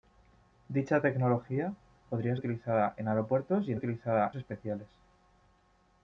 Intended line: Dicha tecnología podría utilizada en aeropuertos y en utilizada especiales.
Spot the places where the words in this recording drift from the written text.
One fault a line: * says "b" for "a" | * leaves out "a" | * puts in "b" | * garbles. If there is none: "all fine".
all fine